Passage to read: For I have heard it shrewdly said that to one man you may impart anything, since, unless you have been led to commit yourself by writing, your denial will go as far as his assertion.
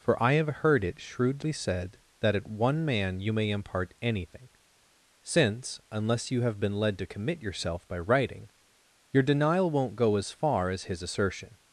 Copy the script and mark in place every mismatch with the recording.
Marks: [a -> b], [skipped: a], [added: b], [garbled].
For I have heard it shrewdly said that [to -> at] one man you may impart anything, since, unless you have been led to commit yourself by writing, your denial [will -> won't] go as far as his assertion.